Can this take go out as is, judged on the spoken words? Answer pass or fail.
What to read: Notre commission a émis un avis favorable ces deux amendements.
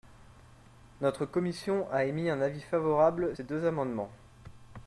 pass